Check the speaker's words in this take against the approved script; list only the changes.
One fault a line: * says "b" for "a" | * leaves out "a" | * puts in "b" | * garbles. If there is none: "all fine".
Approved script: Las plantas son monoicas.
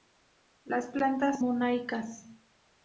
* leaves out "son"